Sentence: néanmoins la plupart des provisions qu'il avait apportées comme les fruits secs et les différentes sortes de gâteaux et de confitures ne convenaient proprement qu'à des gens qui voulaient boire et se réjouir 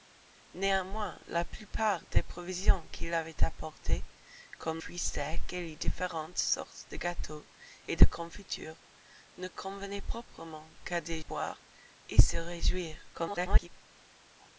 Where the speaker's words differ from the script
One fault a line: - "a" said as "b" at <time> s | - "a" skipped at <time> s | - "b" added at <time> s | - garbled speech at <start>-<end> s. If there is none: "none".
- "les" skipped at 4.8 s
- "gens qui voulaient" skipped at 11.2 s
- garbled speech at 13.1-13.7 s